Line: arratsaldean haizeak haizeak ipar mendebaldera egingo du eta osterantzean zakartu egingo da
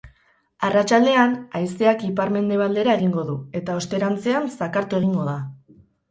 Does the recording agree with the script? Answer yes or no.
no